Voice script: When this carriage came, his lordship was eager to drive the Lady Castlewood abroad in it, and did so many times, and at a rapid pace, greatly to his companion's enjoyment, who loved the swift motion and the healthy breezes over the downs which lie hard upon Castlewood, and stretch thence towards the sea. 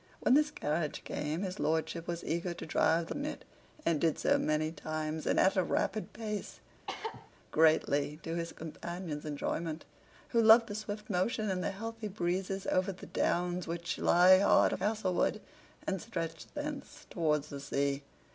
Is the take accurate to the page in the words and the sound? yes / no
no